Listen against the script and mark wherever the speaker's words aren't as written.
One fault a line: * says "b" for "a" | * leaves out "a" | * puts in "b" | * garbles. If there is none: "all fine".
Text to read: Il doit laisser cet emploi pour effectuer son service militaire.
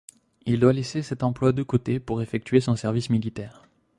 * puts in "de côté"